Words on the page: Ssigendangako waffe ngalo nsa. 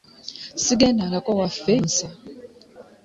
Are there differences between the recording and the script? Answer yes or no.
yes